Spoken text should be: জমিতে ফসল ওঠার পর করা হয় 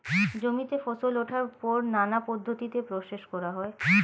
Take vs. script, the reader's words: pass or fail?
fail